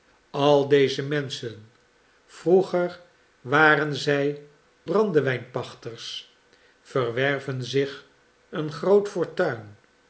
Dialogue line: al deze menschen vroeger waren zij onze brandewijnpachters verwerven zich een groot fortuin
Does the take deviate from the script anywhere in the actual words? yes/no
yes